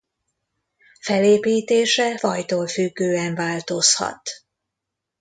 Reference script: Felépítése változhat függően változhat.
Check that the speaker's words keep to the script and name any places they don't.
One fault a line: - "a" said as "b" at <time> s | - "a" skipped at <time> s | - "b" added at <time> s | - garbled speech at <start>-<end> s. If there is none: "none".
- "változhat" said as "fajtól" at 2.1 s